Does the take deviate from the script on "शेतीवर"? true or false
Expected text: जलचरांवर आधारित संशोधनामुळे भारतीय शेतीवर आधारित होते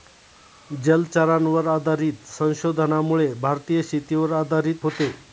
false